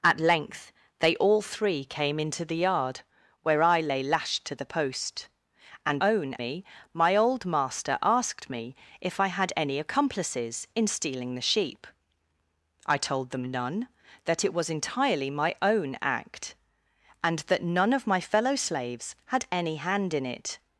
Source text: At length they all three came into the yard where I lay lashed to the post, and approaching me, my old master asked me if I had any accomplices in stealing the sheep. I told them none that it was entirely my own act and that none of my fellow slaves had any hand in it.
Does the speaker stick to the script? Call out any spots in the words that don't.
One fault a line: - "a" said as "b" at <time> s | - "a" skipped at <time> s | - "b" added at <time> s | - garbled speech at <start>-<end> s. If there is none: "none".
- "approaching" said as "own" at 6.0 s